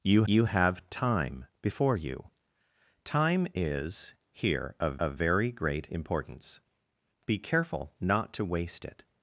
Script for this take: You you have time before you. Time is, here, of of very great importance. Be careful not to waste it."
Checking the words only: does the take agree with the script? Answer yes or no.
yes